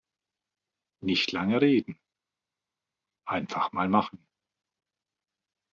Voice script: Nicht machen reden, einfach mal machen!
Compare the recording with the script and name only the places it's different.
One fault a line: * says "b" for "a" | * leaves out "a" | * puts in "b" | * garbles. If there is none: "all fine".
* says "lange" for "machen"